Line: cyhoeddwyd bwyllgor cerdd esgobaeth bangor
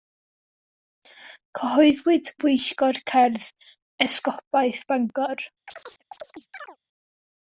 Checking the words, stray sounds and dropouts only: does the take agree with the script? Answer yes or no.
no